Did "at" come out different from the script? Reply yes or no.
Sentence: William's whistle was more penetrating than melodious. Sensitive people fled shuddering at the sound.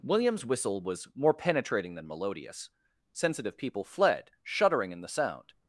yes